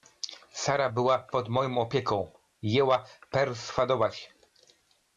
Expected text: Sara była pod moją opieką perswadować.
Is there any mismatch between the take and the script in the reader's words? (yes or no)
yes